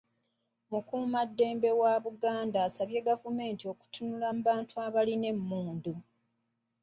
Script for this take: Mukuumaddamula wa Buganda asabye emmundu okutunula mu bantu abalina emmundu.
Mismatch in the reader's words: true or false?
true